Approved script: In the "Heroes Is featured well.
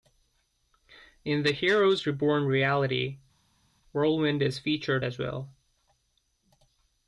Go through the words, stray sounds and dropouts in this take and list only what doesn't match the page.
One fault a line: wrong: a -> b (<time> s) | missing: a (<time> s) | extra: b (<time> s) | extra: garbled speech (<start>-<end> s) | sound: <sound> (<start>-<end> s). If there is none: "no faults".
extra: Reborn reality Whirlwind (2.1 s)
extra: as (5.0 s)